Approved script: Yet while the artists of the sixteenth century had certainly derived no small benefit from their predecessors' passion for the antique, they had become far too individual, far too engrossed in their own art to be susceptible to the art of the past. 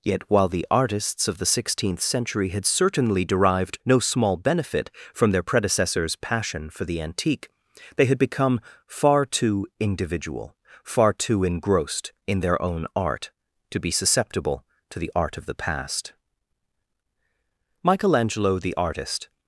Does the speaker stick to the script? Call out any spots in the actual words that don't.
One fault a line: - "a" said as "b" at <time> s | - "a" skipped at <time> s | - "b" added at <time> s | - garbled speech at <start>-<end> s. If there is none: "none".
- "Michelangelo the artist" added at 17.8 s